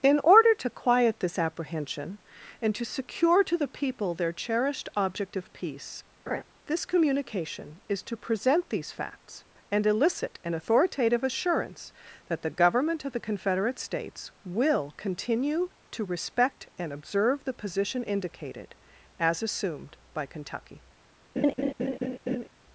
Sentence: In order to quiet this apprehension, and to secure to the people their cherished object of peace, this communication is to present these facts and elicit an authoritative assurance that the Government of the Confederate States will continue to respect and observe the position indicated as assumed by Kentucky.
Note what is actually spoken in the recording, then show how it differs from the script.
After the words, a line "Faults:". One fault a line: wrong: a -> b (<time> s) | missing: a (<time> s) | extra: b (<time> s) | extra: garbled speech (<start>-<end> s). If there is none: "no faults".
In order to quiet this apprehension, and to secure to the people their cherished object of peace, this communication is to present these facts and elicit an authoritative assurance that the Government of the Confederate States will continue to respect and observe the position indicated as assumed by Kentucky.
Faults:
no faults